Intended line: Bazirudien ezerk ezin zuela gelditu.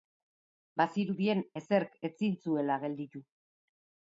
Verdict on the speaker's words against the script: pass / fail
pass